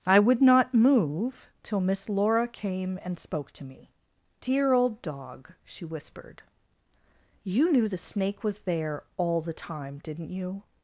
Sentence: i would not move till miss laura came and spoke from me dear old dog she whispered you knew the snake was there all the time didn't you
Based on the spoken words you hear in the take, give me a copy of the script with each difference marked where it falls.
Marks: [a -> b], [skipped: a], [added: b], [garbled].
i would not move till miss laura came and spoke [from -> to] me dear old dog she whispered you knew the snake was there all the time didn't you